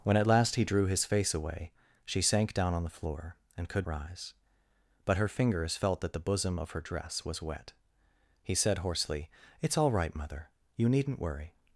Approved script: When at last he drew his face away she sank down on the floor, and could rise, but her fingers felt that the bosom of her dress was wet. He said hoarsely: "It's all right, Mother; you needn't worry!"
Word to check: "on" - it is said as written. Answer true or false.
true